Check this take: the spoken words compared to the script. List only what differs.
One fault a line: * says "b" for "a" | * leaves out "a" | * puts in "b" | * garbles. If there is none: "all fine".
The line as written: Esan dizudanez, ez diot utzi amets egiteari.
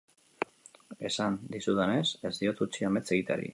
all fine